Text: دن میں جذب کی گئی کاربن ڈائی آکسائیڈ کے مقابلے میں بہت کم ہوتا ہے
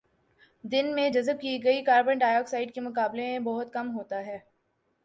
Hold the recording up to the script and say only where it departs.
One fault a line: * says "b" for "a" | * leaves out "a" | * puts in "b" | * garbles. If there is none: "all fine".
all fine